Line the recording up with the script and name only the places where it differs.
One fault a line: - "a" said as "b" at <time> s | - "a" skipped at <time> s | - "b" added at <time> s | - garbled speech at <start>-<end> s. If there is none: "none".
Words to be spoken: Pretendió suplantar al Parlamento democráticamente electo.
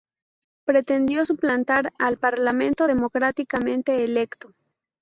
none